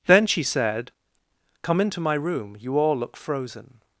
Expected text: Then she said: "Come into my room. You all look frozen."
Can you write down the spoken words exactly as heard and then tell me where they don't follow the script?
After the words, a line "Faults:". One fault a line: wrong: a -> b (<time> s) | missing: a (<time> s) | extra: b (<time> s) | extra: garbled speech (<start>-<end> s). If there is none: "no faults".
Then she said: "Come into my room. You all look frozen."
Faults:
no faults